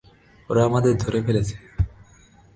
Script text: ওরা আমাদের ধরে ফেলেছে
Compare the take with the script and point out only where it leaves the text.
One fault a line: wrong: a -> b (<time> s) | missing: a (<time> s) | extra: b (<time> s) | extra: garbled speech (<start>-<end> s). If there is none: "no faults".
no faults